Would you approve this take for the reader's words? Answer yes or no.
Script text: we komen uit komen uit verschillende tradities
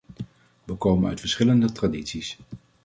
no